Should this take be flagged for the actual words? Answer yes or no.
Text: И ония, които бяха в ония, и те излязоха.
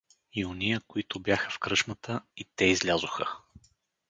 yes